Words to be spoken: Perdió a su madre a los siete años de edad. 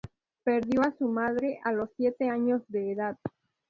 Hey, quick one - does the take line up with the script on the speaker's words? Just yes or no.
yes